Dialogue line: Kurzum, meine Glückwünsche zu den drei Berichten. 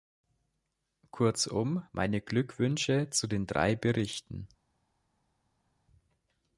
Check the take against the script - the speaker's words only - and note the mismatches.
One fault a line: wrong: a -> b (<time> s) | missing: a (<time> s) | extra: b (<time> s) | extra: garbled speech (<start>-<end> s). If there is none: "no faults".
no faults